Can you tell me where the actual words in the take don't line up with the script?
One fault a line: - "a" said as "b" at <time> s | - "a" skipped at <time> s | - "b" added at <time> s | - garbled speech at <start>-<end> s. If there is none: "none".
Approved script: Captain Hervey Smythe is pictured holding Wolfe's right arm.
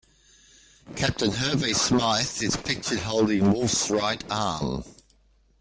none